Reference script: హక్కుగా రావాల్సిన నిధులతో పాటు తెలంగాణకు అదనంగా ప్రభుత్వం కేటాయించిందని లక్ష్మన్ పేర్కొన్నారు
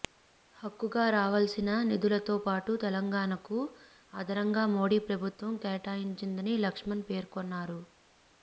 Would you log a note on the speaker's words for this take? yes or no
yes